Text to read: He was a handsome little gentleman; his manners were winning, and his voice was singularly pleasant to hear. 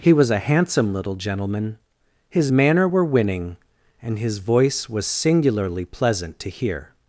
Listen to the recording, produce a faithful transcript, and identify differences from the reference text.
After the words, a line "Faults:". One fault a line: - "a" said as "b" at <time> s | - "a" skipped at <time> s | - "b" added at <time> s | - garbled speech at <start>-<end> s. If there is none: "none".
He was a handsome little gentleman; his manner were winning, and his voice was singularly pleasant to hear.
Faults:
- "manners" said as "manner" at 2.5 s